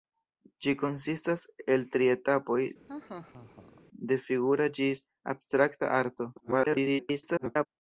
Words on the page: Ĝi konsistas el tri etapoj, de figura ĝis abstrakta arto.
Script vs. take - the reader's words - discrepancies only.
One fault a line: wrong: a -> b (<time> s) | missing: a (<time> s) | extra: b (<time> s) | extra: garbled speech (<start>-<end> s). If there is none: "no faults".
extra: garbled speech (6.4-7.7 s)